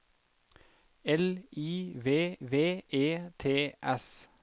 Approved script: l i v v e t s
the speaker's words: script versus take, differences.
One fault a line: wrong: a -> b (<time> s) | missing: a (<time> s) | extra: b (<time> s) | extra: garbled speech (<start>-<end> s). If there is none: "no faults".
no faults